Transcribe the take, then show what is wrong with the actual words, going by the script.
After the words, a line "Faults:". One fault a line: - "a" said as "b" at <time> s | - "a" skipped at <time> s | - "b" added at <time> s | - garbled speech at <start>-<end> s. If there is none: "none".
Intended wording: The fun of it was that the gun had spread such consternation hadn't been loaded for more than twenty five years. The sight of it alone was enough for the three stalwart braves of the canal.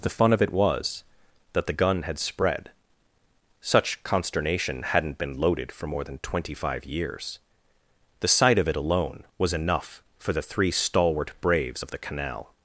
The fun of it was that the gun had spread such consternation hadn't been loaded for more than twenty five years. The sight of it alone was enough for the three stalwart braves of the canal.
Faults:
none